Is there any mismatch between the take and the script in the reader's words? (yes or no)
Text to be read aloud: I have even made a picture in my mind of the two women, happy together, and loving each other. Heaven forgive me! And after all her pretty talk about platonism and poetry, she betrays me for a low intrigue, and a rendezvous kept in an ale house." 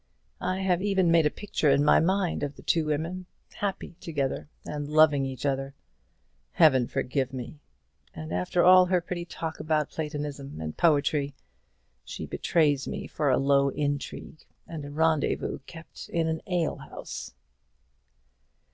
no